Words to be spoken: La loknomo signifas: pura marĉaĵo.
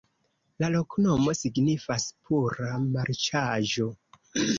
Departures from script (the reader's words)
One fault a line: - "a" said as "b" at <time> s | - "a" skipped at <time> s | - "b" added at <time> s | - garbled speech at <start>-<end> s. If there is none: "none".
none